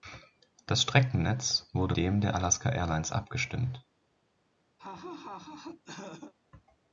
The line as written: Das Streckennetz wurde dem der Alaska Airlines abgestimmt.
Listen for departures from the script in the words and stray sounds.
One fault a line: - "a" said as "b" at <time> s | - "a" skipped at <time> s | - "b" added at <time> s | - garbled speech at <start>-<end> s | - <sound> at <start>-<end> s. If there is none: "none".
- laugh at 4.8-6.3 s